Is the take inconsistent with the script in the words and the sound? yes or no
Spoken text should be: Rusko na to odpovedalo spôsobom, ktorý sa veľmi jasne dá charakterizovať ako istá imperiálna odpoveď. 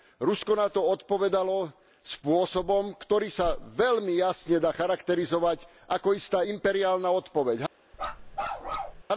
yes